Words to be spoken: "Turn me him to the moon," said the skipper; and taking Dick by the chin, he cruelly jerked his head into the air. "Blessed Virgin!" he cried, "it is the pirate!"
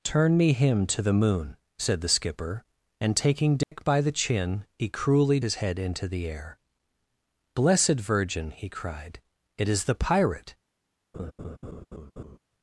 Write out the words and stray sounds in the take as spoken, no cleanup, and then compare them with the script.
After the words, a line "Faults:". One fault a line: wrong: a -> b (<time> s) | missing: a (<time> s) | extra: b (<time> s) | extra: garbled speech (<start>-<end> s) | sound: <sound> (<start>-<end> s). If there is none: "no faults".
"Turn me him to the moon," said the skipper; and taking Dick by the chin, he cruelly his head into the air. "Blessed Virgin!" he cried, "it is the pirate!"
Faults:
sound: dropout (3.6-3.7 s)
missing: jerked (5.4 s)
sound: laugh (11.1-12.4 s)